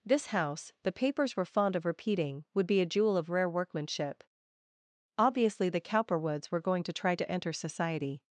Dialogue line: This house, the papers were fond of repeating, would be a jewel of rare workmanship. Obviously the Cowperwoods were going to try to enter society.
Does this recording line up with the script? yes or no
yes